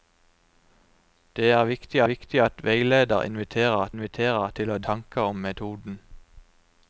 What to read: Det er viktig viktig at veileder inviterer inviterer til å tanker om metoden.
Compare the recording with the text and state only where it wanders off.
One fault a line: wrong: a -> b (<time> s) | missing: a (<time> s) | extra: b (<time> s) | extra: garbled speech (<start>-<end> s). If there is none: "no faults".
no faults